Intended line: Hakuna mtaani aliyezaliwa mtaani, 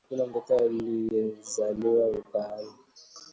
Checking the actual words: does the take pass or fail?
fail